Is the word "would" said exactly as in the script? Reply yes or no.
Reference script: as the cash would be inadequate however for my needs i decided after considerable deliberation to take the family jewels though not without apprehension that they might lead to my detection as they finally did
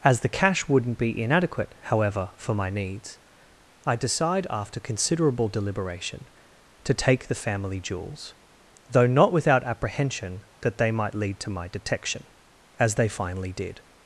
no